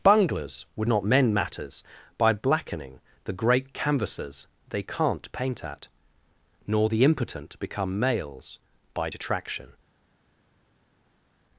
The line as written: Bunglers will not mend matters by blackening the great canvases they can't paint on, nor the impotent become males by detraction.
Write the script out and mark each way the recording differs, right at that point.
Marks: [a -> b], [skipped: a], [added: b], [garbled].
Bunglers [will -> would] not mend matters by blackening the great canvases they can't paint [on, -> at] nor the impotent become males by detraction.